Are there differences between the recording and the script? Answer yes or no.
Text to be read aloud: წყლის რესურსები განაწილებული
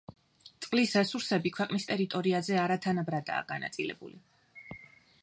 yes